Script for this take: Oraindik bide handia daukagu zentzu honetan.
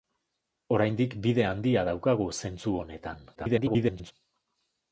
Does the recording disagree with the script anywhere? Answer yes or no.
yes